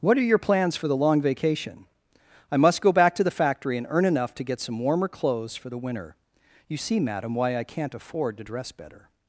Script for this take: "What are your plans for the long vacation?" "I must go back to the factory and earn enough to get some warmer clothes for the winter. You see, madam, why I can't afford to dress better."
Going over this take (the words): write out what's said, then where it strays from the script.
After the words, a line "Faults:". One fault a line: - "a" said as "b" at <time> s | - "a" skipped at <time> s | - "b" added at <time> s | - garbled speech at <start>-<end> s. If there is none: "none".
"What are your plans for the long vacation?" "I must go back to the factory and earn enough to get some warmer clothes for the winter. You see, madam, why I can't afford to dress better."
Faults:
none